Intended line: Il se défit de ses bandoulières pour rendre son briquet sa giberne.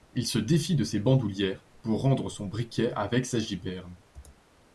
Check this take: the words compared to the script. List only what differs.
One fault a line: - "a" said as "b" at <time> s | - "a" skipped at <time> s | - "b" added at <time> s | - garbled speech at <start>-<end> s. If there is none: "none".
- "avec" added at 2.9 s